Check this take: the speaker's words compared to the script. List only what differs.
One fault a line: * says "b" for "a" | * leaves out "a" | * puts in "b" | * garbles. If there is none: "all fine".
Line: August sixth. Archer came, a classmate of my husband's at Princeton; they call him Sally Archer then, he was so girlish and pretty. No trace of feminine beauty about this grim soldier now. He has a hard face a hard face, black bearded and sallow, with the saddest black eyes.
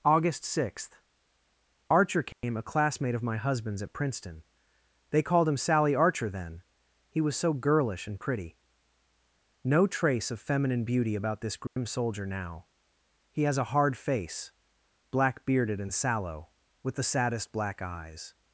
* says "called" for "call"
* leaves out "a hard face"